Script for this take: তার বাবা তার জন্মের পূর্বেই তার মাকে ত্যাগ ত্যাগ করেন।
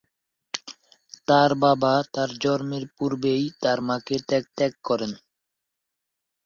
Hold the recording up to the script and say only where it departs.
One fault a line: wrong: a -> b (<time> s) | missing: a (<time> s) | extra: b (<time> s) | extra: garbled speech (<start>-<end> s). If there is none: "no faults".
no faults